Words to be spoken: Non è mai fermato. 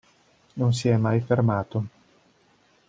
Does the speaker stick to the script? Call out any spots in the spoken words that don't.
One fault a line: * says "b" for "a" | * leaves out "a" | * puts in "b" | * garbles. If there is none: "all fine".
* puts in "si"